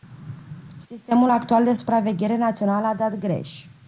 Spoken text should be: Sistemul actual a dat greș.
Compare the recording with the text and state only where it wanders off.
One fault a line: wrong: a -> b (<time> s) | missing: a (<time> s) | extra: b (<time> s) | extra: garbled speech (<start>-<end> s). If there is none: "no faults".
extra: de supraveghere națională (1.6 s)